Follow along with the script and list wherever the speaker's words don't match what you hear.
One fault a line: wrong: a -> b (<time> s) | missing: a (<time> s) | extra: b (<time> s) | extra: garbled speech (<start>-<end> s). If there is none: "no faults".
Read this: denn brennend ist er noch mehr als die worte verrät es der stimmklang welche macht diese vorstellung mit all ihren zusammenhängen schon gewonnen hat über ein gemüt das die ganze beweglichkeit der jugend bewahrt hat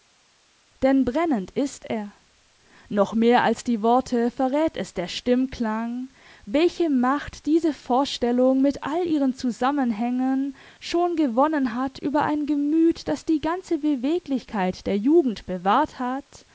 no faults